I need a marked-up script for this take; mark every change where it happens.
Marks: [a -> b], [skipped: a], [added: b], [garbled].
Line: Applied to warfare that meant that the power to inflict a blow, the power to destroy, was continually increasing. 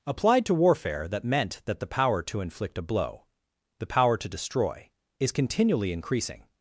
Applied to warfare that meant that the power to inflict a blow, the power to destroy, [was -> is] continually increasing.